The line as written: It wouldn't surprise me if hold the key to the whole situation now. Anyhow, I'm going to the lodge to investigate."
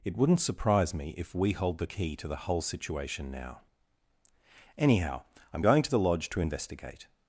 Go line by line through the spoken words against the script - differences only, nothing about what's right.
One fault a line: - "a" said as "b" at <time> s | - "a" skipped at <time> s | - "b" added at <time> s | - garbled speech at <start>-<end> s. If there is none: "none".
- "we" added at 1.4 s